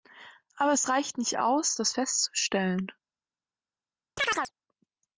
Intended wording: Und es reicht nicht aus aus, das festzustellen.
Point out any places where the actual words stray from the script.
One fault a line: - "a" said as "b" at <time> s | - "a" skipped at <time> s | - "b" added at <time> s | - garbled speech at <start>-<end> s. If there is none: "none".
- "Und" said as "Aber" at 0.6 s
- "aus" skipped at 1.8 s